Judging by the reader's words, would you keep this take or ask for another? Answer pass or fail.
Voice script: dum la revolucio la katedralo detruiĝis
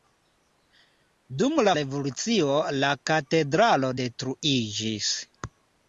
pass